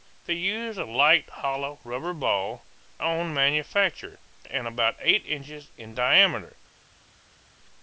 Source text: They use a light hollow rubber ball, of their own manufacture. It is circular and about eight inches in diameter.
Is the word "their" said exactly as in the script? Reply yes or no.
no